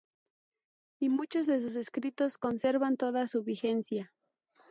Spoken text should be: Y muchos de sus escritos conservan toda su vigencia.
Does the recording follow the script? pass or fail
pass